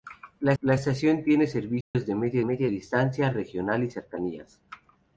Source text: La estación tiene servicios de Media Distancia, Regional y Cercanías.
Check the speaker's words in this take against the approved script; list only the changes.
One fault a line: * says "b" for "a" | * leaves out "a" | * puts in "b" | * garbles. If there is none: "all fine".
* puts in "la"
* puts in "Media"